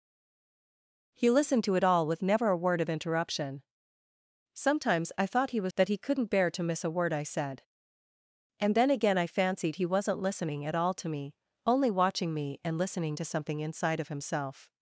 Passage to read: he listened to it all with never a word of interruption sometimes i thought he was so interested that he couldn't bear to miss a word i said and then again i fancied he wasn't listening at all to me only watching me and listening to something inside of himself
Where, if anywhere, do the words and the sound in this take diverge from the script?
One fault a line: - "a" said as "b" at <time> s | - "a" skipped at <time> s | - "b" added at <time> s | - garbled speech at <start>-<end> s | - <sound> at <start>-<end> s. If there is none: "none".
- "so interested" skipped at 5.7 s